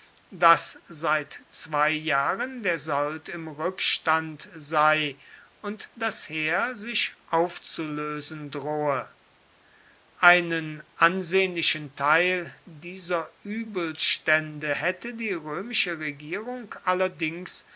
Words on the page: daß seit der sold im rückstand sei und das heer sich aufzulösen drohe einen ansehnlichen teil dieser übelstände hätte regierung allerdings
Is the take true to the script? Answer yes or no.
no